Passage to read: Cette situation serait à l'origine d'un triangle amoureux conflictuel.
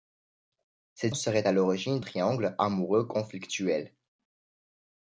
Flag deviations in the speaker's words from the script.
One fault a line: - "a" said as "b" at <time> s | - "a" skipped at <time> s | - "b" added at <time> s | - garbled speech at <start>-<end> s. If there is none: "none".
- "situation" skipped at 1.1 s
- "d'un" skipped at 2.0 s